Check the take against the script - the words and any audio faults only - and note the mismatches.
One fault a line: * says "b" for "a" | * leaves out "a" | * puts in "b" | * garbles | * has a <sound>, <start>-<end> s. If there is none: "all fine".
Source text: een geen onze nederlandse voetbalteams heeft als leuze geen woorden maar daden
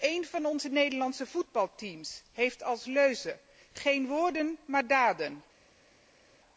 * says "van" for "geen"